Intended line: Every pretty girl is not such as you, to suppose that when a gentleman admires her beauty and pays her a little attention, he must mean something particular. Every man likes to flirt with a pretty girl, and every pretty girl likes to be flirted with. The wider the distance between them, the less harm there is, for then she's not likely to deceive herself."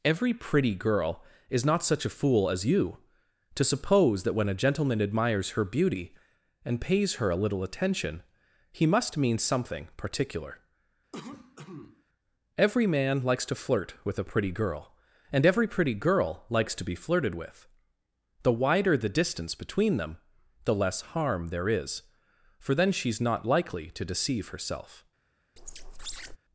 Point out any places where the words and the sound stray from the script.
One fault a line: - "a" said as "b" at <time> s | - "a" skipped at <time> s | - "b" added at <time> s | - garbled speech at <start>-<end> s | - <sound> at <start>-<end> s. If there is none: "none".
- "a fool" added at 2.0 s
- cough at 11.1-12.0 s
- squeak at 25.6-26.4 s